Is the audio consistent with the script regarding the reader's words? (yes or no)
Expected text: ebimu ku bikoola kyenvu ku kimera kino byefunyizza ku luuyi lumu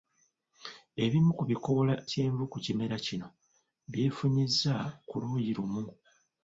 yes